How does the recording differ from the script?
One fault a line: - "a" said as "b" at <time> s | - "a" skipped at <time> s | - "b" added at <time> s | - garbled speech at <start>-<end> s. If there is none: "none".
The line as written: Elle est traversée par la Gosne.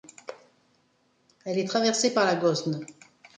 none